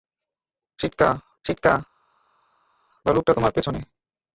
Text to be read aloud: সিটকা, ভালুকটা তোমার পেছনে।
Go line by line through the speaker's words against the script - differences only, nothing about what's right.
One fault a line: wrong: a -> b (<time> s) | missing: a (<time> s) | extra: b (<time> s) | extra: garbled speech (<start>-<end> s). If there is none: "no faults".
extra: সিটকা (1.4 s)